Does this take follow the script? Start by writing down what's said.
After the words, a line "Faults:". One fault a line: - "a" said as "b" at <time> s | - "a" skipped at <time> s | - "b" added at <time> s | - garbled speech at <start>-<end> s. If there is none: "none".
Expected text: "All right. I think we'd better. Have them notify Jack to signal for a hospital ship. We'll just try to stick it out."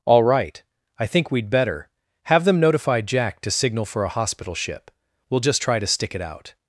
"All right. I think we'd better. Have them notify Jack to signal for a hospital ship. We'll just try to stick it out."
Faults:
none